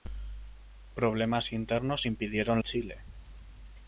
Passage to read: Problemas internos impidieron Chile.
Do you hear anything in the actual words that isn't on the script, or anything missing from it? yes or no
no